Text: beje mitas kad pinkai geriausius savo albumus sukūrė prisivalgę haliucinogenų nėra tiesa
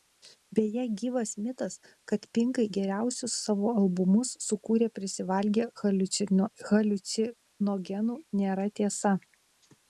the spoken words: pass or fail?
fail